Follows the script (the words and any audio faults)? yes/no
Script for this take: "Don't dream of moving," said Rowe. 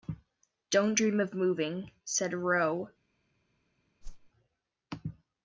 no